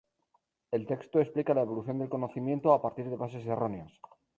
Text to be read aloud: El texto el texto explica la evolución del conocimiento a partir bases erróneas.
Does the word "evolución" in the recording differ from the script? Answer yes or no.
no